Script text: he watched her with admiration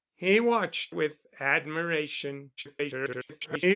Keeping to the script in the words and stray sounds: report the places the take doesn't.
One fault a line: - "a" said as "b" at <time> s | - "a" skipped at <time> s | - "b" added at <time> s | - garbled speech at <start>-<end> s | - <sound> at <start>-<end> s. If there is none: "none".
- "her" skipped at 0.9 s
- garbled speech at 2.6-3.8 s